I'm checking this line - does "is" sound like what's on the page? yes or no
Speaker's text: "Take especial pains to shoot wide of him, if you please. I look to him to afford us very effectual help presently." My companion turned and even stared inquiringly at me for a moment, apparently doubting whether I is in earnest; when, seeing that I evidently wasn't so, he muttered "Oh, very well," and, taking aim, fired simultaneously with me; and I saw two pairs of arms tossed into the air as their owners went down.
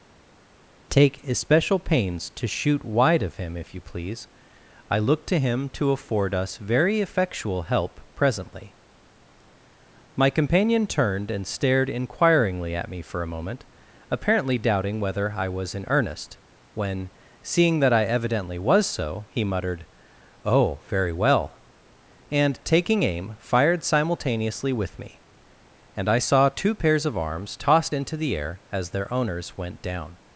no